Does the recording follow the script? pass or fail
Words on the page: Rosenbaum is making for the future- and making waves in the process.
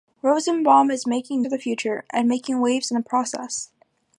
pass